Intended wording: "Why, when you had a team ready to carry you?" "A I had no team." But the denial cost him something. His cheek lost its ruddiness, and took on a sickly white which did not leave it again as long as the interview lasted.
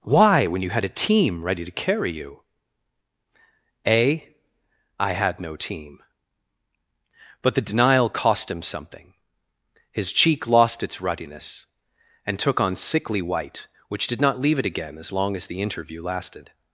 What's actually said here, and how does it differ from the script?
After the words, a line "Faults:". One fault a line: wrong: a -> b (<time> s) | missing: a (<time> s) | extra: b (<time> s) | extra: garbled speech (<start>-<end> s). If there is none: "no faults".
"Why, when you had a team ready to carry you?" "A I had no team." But the denial cost him something. His cheek lost its ruddiness, and took on sickly white which did not leave it again as long as the interview lasted.
Faults:
missing: a (12.8 s)